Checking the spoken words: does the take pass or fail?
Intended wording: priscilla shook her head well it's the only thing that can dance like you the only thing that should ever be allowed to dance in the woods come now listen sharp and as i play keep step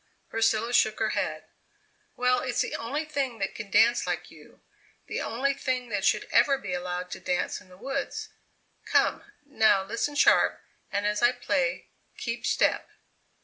pass